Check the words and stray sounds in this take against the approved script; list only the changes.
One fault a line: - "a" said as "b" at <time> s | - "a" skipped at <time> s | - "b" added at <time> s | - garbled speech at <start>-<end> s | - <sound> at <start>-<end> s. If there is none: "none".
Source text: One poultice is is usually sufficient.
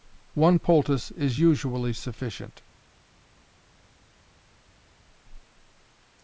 - "is" skipped at 1.4 s